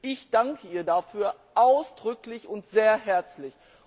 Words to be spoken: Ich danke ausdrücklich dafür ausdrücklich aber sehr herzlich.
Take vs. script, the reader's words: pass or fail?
fail